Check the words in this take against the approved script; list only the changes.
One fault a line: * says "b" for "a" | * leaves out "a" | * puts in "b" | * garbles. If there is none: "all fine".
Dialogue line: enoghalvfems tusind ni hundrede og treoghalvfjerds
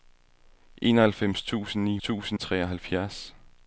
* says "tusind" for "hundrede"